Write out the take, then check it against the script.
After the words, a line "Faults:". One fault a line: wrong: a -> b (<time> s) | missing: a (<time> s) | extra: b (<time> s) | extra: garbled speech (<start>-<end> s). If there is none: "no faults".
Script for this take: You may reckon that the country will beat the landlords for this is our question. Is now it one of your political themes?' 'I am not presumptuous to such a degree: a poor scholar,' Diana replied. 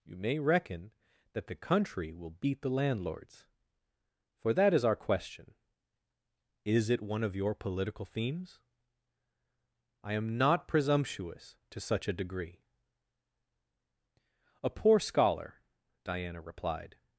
You may reckon that the country will beat the landlords for that is our question. Is it one of your political themes?' 'I am not presumptuous to such a degree: a poor scholar,' Diana replied.
Faults:
wrong: this -> that (4.5 s)
missing: now (6.9 s)